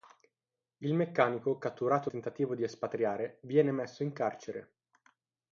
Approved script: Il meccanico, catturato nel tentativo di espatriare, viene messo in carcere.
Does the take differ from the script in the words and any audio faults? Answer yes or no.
yes